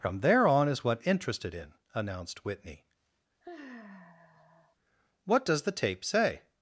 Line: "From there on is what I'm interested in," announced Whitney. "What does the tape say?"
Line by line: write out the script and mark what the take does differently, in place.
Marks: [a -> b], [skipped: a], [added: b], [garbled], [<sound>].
"From there on is what [skipped: I'm] interested in," announced Whitney. [sigh] "What does the tape say?"